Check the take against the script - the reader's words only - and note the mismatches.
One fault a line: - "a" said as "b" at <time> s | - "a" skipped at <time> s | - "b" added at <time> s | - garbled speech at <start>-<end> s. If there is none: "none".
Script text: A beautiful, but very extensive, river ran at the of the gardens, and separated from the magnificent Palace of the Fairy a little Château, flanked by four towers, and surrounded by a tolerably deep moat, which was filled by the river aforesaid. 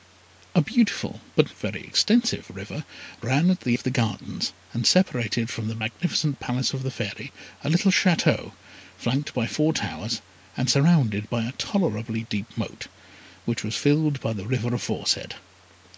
none